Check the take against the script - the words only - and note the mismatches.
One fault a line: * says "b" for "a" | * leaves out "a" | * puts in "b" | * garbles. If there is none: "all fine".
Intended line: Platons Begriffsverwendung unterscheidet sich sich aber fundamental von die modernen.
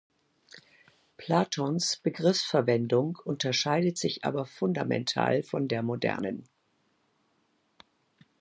* leaves out "sich"
* says "der" for "die"